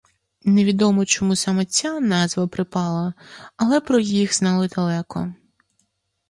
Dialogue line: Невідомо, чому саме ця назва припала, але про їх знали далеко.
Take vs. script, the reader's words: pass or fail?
pass